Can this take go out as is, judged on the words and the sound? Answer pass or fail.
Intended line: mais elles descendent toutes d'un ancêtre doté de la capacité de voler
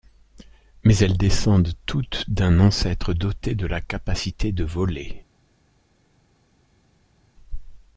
pass